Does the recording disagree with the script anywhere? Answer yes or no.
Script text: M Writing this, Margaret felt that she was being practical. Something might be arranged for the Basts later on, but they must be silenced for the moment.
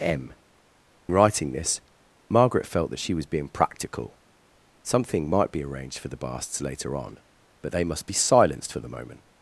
no